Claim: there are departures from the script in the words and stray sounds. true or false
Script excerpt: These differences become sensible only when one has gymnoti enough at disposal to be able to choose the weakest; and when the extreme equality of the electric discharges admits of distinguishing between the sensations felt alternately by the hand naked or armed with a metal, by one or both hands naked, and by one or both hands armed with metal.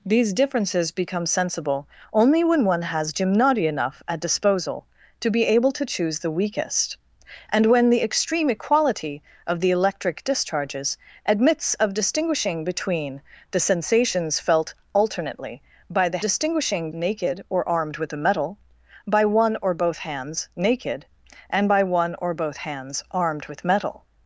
true